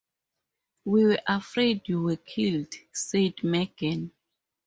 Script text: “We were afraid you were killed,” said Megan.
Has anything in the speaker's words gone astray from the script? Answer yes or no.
no